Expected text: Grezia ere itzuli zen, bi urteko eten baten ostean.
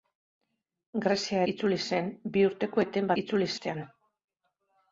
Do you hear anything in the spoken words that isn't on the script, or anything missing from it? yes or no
yes